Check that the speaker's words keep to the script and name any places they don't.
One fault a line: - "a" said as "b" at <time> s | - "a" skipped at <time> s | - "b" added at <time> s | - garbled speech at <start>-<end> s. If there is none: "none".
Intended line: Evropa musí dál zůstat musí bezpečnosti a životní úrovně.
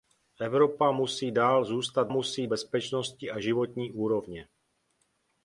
none